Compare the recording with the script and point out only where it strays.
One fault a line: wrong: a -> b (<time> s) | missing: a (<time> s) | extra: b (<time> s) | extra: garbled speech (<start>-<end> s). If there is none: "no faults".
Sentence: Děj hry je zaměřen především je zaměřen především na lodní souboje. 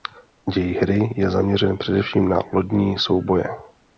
missing: je zaměřen především (2.3 s)